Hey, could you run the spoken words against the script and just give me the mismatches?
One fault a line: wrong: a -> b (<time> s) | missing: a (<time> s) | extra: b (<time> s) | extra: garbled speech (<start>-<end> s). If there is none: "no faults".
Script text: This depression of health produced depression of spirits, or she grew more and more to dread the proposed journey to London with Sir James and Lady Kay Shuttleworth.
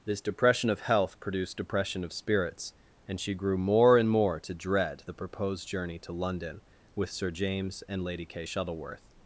wrong: or -> and (3.1 s)